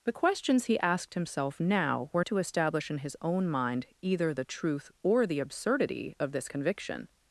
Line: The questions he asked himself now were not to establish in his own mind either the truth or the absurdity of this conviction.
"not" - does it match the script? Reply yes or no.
no